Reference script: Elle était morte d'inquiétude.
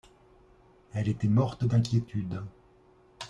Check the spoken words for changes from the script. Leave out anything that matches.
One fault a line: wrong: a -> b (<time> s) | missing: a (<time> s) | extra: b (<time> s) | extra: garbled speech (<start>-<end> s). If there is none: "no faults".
no faults